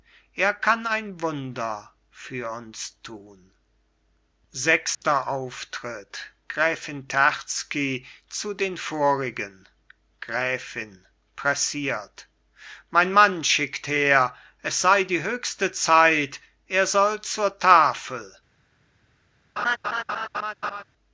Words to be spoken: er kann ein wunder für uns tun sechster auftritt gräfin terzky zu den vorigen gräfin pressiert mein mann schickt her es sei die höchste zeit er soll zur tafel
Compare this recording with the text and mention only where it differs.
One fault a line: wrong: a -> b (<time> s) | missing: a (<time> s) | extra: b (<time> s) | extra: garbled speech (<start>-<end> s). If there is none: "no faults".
no faults